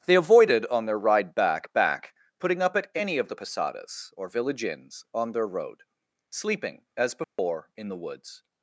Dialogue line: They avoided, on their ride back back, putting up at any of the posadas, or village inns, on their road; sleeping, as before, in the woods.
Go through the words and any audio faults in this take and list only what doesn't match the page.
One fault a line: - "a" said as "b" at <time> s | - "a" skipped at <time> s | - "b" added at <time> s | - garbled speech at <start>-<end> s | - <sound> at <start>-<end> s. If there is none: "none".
- dropout at 7.2-7.4 s